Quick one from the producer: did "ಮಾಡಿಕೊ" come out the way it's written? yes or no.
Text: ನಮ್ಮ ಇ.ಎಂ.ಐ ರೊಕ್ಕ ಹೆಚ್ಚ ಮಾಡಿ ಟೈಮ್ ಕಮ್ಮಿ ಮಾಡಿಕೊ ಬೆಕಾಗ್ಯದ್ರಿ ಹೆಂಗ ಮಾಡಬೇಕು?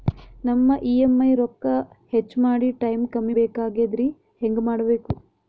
no